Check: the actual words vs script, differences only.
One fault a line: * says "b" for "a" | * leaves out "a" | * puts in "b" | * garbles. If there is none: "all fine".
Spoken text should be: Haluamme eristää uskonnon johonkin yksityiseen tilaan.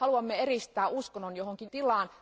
* leaves out "yksityiseen"